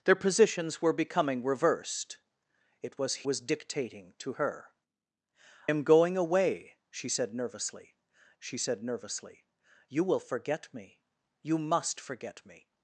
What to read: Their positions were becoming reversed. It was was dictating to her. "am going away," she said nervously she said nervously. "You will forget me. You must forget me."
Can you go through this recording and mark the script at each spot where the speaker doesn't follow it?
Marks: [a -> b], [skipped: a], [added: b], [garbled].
Their positions were becoming reversed. It was was dictating to her. "am going away," she said nervously she said nervously. "You will forget me. You must forget me."